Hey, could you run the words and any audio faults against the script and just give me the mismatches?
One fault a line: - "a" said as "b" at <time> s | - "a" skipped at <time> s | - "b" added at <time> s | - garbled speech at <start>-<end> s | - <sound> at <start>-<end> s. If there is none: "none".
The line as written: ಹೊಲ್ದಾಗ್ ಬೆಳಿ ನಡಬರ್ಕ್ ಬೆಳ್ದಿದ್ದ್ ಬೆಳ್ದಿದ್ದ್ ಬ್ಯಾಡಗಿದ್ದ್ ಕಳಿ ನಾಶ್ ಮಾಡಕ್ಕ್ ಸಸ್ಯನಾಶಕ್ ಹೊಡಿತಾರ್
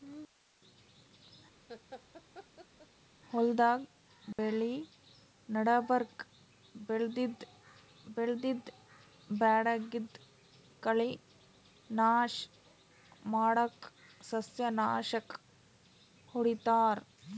- laugh at 1.7-2.9 s
- dropout at 4.3-4.4 s